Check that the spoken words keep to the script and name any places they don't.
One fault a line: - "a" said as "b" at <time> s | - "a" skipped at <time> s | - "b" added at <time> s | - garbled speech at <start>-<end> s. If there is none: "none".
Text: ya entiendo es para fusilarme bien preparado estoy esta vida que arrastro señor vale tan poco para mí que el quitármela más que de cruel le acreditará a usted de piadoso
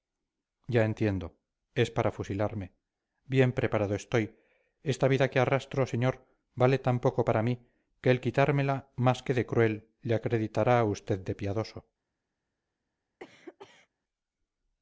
none